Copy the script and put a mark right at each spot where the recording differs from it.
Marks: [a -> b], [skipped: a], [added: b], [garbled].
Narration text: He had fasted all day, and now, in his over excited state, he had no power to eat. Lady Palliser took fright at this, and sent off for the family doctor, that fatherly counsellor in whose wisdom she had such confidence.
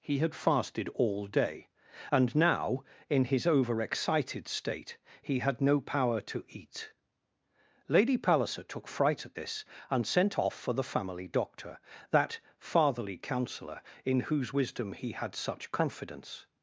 He had fasted all day, and now, in his over excited state, he had no power to eat. Lady Palliser took fright at this, and sent off for the family doctor, that fatherly counsellor in whose wisdom [she -> he] had such confidence.